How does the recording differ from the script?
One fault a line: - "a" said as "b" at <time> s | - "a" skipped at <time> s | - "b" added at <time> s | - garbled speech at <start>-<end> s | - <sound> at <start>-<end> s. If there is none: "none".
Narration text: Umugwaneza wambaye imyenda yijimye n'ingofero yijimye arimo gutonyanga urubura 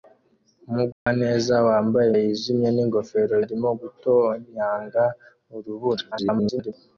- dropout at 0.9-1.1 s
- "imyenda" skipped at 2.1 s
- "yijimye" skipped at 3.3 s
- garbled speech at 6.1-6.7 s